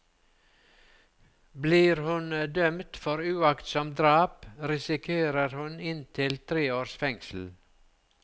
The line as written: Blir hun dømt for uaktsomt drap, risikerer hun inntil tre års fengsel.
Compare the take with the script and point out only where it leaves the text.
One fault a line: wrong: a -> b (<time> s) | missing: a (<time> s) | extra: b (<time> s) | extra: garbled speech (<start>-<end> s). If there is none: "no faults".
no faults